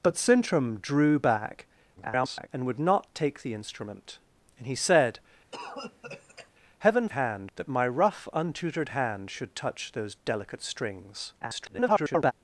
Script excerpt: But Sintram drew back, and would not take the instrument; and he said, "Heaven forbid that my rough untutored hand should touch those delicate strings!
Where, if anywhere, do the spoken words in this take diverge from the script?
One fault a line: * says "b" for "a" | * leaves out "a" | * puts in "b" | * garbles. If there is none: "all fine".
* garbles
* says "hand" for "forbid"
* garbles